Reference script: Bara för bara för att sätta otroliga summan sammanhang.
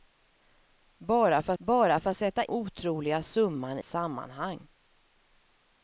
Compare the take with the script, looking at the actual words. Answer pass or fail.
pass